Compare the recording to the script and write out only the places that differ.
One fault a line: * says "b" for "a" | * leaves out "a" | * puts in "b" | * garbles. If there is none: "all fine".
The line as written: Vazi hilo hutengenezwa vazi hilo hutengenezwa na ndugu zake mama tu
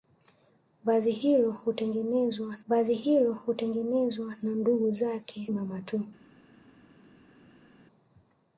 all fine